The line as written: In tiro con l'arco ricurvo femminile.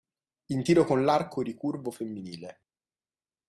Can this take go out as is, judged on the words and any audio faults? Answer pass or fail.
pass